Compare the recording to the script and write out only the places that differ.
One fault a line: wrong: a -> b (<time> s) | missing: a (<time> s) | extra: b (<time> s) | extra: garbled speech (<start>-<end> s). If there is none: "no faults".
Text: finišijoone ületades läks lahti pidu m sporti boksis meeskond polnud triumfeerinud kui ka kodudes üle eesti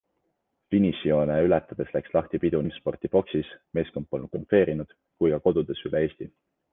no faults